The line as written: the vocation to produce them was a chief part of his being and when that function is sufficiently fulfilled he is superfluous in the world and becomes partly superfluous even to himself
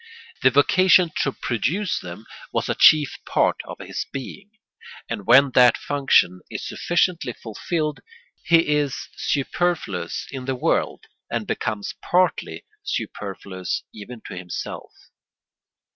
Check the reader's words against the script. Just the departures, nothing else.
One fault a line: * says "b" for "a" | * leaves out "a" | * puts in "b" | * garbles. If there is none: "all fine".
all fine